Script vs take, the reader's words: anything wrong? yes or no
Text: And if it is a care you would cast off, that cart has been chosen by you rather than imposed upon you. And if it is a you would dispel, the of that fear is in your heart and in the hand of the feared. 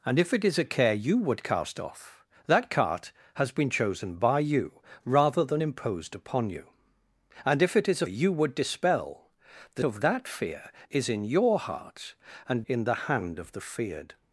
no